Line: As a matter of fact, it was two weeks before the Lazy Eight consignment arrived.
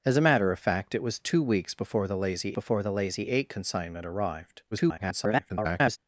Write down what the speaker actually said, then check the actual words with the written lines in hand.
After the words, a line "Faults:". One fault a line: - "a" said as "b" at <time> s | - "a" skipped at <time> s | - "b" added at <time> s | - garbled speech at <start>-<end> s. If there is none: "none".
As a matter of fact, it was two weeks before the Lazy before the Lazy Eight consignment arrived. [garbled]
Faults:
- "before the Lazy" added at 2.5 s
- garbled speech at 4.7-6.0 s